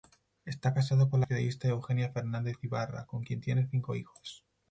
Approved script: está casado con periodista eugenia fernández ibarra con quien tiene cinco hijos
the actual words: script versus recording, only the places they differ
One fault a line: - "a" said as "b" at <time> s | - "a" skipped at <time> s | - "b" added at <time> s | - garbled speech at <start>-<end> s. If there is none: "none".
none